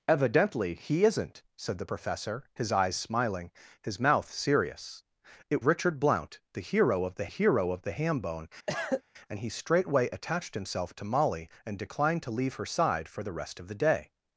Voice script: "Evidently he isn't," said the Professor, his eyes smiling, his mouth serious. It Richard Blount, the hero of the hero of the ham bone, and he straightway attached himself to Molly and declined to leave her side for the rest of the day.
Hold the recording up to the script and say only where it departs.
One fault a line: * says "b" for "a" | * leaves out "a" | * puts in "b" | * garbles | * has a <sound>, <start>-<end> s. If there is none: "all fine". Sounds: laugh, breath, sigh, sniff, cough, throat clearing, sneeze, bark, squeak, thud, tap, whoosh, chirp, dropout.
* has a cough, 8.7-9.0 s